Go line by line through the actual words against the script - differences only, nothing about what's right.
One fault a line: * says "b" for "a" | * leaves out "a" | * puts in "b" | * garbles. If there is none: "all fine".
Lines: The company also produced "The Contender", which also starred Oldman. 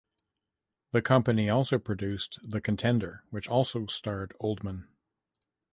all fine